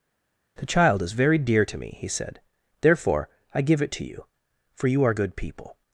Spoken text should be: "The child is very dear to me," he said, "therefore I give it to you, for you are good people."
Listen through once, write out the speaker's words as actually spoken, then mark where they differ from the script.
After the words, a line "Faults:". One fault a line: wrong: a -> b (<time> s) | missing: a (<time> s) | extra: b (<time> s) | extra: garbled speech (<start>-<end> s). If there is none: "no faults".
"The child is very dear to me," he said, "therefore I give it to you, for you are good people."
Faults:
no faults